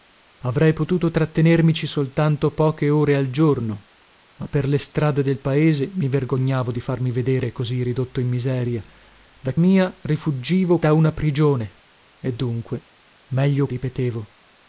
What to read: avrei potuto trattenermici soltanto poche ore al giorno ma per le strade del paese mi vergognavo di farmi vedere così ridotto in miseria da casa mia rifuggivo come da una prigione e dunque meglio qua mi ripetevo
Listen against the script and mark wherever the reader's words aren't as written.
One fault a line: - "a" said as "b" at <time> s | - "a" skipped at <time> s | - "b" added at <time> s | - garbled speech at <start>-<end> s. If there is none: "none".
- "casa" skipped at 9.6 s
- "come" skipped at 10.8 s
- "qua mi" skipped at 13.7 s